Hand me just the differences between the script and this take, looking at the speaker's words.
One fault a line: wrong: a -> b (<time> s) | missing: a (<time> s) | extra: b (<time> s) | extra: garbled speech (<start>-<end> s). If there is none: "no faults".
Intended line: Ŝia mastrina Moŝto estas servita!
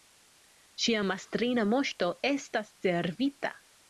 no faults